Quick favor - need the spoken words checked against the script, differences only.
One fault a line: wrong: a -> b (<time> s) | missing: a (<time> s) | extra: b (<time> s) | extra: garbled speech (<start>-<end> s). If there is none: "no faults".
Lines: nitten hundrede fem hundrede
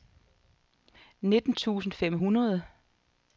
wrong: hundrede -> tusind (1.5 s)